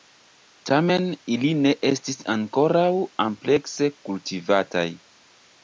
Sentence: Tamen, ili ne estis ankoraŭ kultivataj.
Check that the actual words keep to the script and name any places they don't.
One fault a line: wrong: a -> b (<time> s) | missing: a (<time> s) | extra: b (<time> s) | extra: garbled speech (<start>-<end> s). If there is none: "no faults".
extra: amplekse (3.3 s)